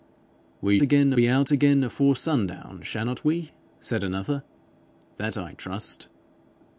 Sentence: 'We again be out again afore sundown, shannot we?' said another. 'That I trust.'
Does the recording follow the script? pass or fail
pass